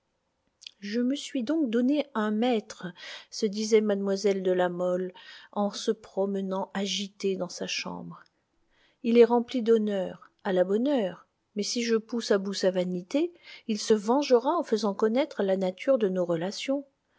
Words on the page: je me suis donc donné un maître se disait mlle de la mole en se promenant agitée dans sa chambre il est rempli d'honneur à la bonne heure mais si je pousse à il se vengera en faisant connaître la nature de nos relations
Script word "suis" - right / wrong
right